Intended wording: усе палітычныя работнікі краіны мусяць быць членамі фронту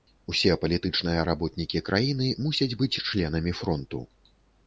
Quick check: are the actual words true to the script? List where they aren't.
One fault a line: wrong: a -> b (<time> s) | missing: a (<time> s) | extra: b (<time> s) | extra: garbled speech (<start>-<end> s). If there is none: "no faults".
no faults